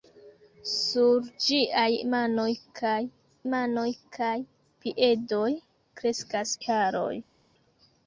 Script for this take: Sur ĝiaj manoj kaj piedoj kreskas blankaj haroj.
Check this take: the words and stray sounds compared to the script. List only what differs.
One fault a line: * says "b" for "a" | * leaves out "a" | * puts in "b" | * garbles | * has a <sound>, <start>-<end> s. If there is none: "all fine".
* puts in "manoj kaj"
* leaves out "blankaj"